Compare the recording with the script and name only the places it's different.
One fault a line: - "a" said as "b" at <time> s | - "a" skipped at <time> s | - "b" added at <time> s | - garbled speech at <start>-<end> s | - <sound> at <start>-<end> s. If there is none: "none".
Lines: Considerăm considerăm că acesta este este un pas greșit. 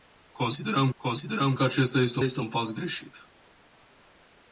none